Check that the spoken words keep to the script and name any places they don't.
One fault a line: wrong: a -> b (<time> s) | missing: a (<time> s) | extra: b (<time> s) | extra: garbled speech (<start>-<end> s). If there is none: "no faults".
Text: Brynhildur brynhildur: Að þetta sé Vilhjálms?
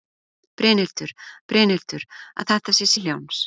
no faults